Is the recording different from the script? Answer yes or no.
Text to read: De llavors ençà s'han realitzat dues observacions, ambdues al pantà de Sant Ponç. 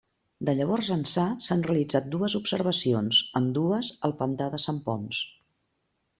no